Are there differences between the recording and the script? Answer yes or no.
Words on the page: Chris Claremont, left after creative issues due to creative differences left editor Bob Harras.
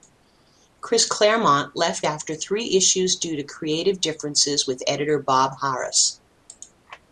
yes